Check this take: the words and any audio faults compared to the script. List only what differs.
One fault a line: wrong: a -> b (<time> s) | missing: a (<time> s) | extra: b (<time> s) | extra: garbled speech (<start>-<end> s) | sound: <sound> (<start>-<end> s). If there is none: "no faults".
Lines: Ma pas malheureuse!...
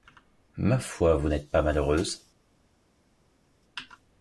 extra: foi vous n'êtes (0.8 s)